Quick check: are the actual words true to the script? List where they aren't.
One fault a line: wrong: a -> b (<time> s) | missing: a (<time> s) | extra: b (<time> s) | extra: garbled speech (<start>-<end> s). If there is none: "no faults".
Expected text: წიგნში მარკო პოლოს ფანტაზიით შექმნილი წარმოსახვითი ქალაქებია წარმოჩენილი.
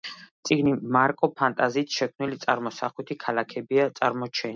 missing: პოლოს (1.3 s)